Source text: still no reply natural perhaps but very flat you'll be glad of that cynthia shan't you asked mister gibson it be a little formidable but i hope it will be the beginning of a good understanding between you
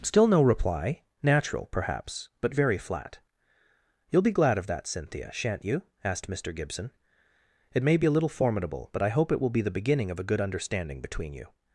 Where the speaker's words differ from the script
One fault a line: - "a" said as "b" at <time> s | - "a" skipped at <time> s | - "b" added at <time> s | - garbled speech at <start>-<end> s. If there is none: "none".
- "may" added at 7.8 s